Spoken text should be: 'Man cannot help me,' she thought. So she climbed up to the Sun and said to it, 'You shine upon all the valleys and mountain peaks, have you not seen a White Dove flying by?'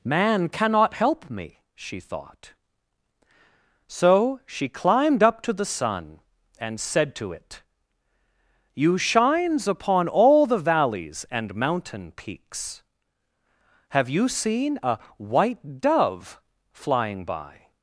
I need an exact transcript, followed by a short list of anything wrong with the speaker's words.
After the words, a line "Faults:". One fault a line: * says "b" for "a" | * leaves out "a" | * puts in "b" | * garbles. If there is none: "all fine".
'Man cannot help me,' she thought. So she climbed up to the Sun and said to it, 'You shines upon all the valleys and mountain peaks, have you seen a White Dove flying by?'
Faults:
* says "shines" for "shine"
* leaves out "not"